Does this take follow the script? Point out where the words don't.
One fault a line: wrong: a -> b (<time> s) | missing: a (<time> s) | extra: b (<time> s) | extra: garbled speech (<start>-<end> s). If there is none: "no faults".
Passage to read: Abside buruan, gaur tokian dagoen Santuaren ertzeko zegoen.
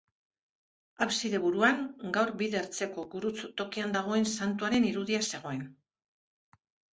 extra: bide ertzeko gurutz (2.4 s)
wrong: ertzeko -> irudia (4.9 s)